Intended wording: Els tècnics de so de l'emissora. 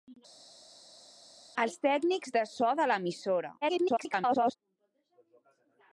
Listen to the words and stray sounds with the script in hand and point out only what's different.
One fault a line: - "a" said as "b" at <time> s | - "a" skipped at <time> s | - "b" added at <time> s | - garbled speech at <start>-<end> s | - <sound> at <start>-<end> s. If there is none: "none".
- garbled speech at 3.6-4.6 s